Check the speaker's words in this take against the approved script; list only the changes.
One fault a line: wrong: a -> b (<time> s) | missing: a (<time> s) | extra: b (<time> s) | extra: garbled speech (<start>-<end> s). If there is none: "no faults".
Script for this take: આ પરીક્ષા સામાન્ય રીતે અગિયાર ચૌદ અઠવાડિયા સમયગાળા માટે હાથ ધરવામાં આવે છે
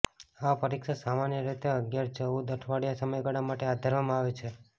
no faults